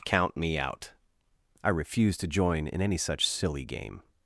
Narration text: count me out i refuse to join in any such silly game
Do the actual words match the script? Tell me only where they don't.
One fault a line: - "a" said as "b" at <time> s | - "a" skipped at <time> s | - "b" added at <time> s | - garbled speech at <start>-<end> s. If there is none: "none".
none